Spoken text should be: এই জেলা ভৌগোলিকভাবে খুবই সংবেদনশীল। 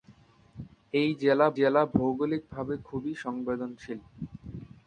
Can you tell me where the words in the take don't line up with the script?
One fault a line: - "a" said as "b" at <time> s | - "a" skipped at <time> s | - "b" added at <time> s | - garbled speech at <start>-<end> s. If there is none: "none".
- "জেলা" added at 1.6 s